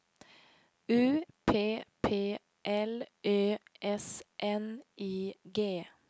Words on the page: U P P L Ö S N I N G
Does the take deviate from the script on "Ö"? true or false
false